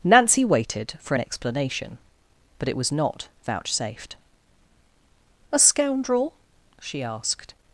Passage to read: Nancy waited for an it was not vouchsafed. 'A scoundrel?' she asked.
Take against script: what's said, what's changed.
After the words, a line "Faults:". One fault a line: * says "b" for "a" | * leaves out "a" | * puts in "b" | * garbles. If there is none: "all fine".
Nancy waited for an explanation, but it was not vouchsafed. 'A scoundrel?' she asked.
Faults:
* puts in "explanation but"